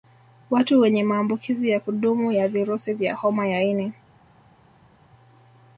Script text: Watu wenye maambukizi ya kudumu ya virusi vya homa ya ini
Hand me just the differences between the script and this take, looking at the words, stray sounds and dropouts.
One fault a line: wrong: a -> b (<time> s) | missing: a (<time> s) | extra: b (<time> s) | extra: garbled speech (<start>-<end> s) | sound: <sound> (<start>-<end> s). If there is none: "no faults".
no faults